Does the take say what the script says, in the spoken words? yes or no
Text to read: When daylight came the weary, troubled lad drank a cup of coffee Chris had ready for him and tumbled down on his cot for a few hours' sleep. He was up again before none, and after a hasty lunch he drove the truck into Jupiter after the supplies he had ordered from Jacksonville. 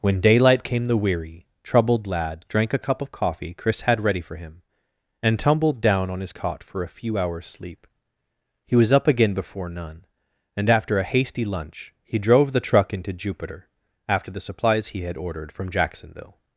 yes